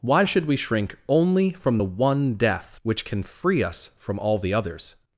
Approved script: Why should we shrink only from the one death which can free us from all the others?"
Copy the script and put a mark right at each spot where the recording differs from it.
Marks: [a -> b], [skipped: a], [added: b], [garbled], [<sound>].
Why should we shrink only from the one death which can free us from all the others?"